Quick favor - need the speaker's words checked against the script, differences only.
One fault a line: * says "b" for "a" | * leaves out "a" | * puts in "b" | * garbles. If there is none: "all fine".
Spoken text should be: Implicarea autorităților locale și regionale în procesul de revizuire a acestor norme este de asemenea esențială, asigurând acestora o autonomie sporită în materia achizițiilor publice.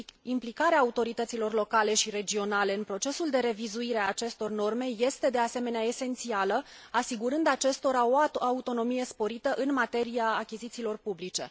all fine